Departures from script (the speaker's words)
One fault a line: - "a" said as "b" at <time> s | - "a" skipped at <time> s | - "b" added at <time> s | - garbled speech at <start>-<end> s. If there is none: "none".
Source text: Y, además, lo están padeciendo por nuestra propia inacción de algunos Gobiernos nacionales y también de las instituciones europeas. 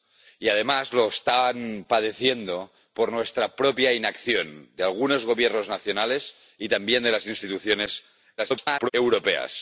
- garbled speech at 8.4-8.9 s